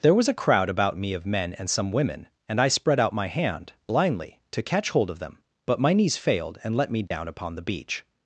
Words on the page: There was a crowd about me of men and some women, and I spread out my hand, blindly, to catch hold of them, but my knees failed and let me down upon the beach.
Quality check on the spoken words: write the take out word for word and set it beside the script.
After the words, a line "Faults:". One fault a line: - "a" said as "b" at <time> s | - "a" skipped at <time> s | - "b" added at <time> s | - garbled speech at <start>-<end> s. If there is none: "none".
There was a crowd about me of men and some women, and I spread out my hand, blindly, to catch hold of them, but my knees failed and let me down upon the beach.
Faults:
none